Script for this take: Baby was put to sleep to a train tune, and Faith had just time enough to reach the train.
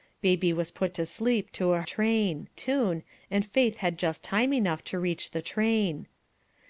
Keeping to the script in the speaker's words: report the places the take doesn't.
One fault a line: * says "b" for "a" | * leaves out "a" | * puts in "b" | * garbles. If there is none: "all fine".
all fine